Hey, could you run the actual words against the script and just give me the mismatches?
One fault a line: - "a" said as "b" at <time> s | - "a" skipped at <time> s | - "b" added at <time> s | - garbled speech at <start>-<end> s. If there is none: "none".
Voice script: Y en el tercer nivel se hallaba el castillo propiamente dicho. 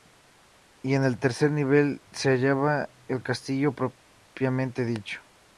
none